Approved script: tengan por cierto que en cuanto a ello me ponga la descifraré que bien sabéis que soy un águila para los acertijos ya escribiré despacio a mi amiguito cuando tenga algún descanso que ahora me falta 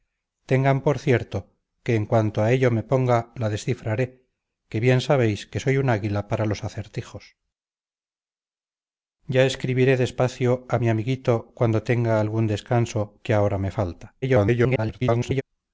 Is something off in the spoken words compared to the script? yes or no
yes